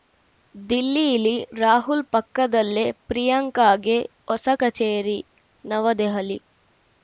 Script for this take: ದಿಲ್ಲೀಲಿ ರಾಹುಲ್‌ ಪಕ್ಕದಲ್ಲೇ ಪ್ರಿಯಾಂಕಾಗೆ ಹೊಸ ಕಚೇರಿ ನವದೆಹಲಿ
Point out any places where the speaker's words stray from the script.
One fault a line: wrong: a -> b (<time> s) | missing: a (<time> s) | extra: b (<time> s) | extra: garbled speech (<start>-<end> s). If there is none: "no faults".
no faults